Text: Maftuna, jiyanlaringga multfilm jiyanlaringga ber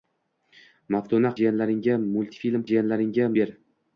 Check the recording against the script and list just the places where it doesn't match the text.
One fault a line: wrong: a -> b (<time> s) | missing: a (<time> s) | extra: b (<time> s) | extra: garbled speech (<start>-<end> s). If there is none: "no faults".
no faults